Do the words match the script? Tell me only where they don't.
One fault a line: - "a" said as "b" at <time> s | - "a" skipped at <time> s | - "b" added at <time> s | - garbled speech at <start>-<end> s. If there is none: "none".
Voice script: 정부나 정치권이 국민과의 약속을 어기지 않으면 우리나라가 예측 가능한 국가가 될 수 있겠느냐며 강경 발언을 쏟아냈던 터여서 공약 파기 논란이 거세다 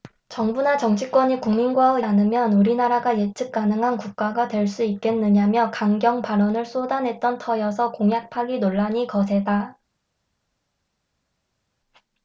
- "약속을 어기지" skipped at 2.0 s